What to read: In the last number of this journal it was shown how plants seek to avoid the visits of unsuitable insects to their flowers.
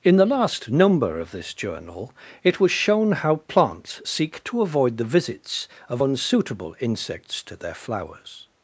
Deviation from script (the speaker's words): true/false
false